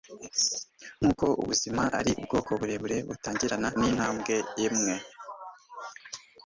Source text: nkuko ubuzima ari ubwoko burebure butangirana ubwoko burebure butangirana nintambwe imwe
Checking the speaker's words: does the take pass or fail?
fail